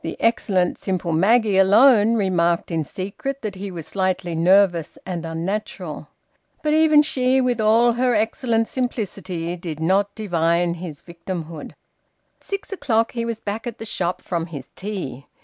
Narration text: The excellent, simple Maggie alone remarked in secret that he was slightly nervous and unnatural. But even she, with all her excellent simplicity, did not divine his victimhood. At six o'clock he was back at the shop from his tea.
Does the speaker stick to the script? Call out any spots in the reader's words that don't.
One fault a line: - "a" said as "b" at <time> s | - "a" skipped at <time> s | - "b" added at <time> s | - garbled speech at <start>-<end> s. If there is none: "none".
- "At" skipped at 11.7 s